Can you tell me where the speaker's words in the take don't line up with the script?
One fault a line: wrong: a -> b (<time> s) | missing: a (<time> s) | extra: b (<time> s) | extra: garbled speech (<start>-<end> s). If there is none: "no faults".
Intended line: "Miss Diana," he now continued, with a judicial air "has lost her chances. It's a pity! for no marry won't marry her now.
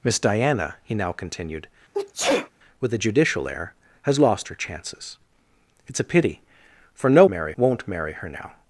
no faults